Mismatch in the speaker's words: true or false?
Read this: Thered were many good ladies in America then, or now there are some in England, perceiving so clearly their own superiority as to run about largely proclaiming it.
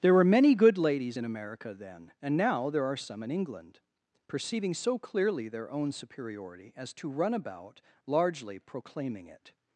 true